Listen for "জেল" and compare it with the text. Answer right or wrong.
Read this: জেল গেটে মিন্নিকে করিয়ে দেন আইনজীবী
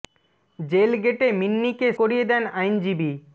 right